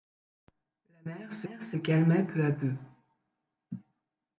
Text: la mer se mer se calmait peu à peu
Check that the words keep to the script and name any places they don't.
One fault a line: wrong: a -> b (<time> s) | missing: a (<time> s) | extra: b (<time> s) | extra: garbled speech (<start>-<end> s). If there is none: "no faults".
no faults